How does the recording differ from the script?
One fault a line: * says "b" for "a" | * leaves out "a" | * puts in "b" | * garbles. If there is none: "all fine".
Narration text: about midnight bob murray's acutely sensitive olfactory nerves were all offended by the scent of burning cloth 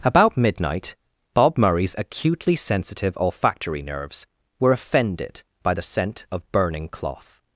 * leaves out "all"